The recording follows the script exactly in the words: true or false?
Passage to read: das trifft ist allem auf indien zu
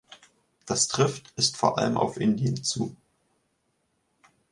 false